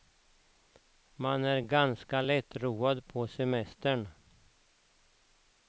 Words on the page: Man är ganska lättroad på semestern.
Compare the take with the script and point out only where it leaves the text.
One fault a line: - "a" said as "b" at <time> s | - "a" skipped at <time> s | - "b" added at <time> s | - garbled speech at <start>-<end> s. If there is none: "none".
none